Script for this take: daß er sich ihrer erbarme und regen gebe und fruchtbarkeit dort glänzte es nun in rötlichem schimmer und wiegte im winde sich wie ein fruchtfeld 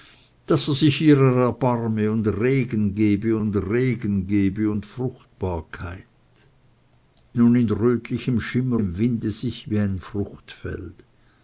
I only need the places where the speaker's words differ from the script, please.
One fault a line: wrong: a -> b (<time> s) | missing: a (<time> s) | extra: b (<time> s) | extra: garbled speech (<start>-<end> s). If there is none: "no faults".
wrong: fruchtbarkeit dort glänzte es -> regen gebe und fruchtbarkeit (3.6 s)
missing: und wiegte (8.8 s)